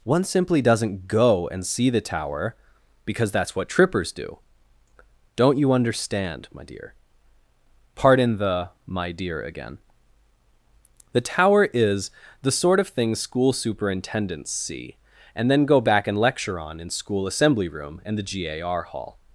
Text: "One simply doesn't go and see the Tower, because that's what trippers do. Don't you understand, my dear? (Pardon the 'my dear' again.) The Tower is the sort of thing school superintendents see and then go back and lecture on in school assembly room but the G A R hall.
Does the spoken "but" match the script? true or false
false